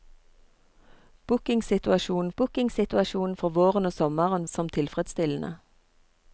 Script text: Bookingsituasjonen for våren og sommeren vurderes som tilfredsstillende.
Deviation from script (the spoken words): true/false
true